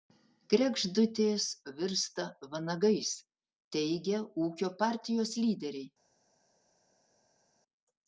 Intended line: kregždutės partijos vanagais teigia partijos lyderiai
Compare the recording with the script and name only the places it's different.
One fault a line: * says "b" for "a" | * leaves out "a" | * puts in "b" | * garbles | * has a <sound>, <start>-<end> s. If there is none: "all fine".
* says "virsta" for "partijos"
* puts in "ūkio"